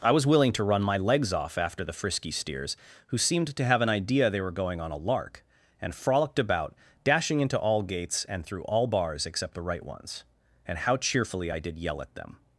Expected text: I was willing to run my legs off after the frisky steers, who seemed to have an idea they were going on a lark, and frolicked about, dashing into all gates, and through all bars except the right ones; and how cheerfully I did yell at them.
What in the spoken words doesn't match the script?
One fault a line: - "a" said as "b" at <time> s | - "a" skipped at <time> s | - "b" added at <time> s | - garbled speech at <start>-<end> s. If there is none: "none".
none